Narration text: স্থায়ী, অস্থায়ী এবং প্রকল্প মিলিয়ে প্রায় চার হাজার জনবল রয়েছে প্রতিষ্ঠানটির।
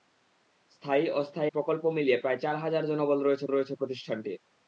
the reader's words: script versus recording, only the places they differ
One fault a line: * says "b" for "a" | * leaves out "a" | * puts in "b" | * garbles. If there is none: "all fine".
* leaves out "এবং"
* puts in "রয়েছে"